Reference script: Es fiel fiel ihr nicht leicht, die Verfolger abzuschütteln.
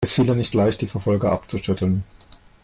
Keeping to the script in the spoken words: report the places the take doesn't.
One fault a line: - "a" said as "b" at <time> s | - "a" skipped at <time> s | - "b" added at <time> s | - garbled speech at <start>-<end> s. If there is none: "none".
- "fiel" skipped at 0.2 s